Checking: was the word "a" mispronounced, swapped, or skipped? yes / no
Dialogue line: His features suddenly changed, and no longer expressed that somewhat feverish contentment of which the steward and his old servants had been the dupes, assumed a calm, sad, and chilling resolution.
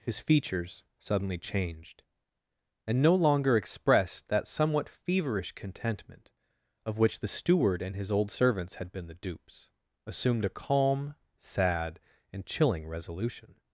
no